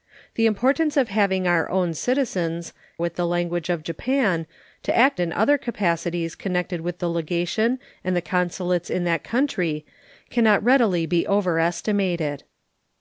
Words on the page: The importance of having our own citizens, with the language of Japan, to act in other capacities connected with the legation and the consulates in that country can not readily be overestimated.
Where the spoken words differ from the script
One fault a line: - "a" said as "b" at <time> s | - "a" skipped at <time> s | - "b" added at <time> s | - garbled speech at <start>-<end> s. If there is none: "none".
none